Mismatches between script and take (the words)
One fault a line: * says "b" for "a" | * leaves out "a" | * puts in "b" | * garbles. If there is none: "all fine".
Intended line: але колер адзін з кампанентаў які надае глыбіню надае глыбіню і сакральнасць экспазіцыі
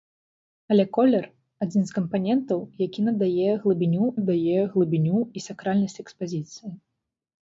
all fine